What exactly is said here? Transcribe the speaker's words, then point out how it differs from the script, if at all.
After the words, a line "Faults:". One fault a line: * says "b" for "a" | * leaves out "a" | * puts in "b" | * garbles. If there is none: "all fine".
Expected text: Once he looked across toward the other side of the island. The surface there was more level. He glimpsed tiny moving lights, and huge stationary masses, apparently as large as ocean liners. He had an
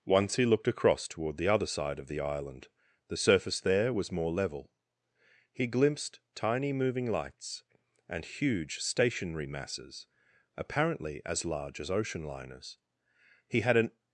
Once he looked across toward the other side of the island. The surface there was more level. He glimpsed tiny moving lights, and huge stationary masses, apparently as large as ocean liners. He had an
Faults:
all fine